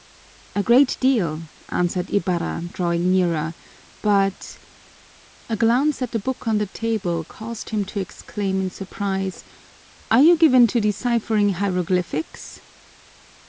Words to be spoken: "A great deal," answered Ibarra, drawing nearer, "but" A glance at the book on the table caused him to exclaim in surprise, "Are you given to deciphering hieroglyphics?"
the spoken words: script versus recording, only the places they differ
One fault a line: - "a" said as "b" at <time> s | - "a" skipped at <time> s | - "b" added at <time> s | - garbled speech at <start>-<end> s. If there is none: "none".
none